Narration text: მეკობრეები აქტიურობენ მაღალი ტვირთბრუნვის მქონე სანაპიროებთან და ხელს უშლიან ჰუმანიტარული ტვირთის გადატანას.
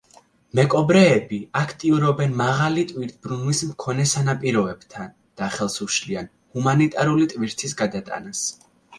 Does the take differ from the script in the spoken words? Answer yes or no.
no